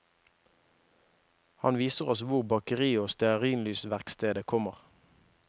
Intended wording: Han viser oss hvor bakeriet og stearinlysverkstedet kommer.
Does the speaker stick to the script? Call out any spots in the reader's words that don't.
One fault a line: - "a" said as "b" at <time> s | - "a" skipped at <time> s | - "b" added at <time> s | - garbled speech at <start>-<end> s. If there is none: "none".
none